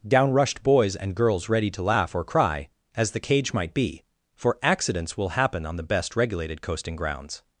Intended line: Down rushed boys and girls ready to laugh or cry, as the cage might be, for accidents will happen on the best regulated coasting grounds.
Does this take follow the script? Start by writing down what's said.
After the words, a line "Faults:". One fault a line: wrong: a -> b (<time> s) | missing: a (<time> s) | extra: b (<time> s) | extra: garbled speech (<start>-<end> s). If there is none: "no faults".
Down rushed boys and girls ready to laugh or cry, as the cage might be, for accidents will happen on the best regulated coasting grounds.
Faults:
no faults